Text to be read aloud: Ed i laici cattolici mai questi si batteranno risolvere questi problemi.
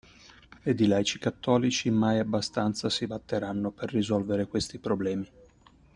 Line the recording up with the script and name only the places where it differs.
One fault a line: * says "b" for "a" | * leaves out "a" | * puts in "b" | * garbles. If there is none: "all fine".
* says "abbastanza" for "questi"
* puts in "per"